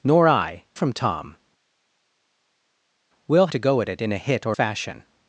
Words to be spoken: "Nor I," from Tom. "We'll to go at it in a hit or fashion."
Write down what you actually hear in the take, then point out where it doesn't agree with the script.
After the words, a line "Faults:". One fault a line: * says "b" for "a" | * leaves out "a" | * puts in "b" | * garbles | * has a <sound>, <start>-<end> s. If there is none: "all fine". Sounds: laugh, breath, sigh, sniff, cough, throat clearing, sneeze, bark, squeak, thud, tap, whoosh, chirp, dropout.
"Nor I," from Tom. "We'll to go at it in a hit or fashion."
Faults:
all fine